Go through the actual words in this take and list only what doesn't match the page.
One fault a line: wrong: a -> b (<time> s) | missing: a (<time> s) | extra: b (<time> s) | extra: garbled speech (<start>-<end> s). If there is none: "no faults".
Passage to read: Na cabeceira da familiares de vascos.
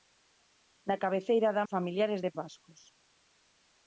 no faults